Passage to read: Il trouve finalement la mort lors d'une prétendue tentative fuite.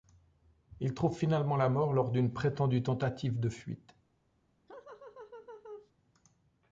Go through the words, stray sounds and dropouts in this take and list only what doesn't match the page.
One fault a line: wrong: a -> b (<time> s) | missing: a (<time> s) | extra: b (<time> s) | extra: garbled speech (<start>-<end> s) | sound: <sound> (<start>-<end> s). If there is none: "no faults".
extra: de (3.4 s)
sound: laugh (4.7-5.9 s)